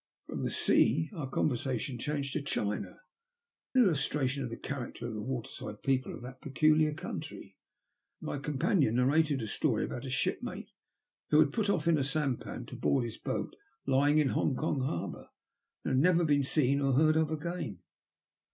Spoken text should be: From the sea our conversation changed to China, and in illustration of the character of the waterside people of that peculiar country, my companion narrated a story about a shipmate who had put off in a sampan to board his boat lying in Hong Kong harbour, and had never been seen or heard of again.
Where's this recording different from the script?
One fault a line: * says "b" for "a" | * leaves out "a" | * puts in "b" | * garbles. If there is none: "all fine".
* leaves out "and in"